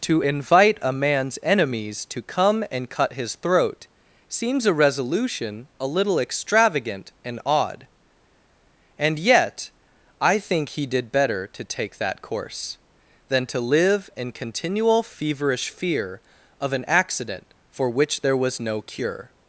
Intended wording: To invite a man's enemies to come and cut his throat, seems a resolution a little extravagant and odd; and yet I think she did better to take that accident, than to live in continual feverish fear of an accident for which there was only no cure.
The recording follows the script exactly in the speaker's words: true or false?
false